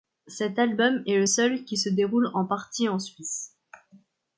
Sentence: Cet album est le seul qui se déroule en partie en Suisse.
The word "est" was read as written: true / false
true